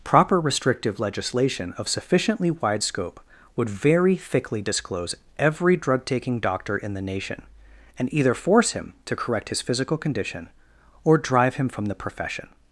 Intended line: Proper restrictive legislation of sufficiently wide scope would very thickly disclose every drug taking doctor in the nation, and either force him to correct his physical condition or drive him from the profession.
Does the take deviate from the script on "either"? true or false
false